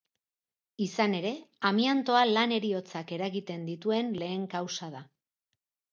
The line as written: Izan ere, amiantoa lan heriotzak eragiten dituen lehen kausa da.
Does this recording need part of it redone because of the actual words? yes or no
no